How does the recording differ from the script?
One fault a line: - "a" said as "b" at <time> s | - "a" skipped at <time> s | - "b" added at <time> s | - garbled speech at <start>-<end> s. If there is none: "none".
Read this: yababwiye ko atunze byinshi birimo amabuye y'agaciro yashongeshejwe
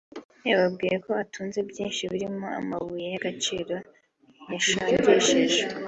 none